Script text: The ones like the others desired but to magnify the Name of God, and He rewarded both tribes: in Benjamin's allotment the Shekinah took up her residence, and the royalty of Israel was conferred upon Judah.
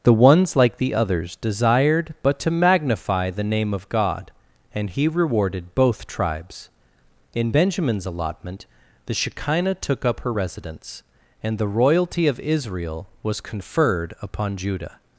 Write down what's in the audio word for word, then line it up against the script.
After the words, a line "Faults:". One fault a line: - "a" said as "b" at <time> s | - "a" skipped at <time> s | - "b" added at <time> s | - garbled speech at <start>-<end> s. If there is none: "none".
The ones like the others desired but to magnify the Name of God, and He rewarded both tribes: in Benjamin's allotment the Shekinah took up her residence, and the royalty of Israel was conferred upon Judah.
Faults:
none